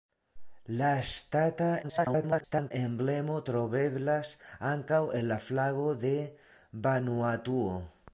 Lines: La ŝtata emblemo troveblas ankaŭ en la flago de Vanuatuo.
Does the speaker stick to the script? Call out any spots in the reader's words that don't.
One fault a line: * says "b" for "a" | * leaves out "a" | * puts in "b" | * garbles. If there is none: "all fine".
* garbles